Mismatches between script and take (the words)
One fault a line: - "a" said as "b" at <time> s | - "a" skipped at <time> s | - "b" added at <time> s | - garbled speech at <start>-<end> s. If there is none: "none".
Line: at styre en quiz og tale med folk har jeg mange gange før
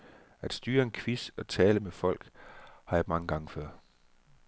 none